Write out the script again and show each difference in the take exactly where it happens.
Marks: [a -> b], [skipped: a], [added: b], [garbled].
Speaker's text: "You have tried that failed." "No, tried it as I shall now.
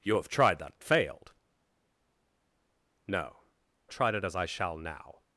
"You have tried that failed." "No, tried it as I shall now.